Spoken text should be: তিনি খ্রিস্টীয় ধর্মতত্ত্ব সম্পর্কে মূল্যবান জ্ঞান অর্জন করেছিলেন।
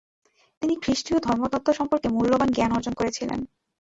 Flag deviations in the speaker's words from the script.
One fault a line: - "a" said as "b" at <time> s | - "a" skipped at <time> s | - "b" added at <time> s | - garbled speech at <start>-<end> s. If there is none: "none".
none